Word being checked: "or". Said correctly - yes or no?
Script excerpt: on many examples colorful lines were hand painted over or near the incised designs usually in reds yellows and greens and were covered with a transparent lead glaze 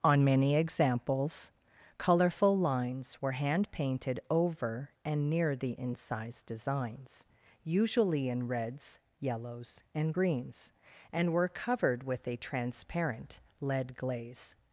no